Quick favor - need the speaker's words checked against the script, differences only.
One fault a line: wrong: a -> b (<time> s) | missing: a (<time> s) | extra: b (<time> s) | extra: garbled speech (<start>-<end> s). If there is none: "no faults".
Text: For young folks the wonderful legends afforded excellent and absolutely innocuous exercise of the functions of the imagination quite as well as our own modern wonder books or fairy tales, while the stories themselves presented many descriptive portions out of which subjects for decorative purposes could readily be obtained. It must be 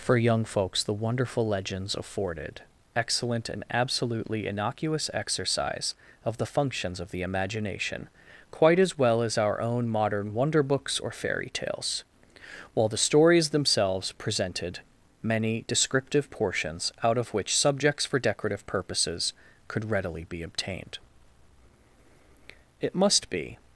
no faults